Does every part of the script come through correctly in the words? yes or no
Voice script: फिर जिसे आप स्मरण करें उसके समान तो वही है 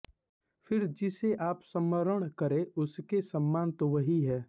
yes